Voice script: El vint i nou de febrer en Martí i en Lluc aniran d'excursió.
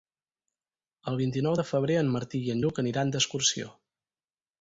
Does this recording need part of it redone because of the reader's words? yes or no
no